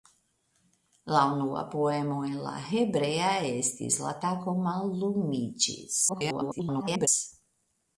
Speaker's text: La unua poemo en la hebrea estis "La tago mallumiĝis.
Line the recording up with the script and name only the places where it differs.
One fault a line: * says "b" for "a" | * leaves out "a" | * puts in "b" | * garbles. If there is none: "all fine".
* garbles